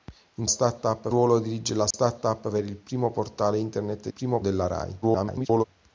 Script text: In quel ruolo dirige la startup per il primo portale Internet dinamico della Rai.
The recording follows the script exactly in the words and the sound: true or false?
false